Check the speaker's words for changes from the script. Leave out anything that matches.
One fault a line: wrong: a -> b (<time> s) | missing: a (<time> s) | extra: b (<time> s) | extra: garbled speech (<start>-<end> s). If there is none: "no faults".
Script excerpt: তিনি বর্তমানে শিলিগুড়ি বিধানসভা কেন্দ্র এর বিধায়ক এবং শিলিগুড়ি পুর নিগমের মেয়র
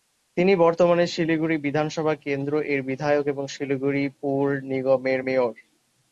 no faults